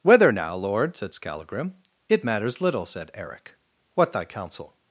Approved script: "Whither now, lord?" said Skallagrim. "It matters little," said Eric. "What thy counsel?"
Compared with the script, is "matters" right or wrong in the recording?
right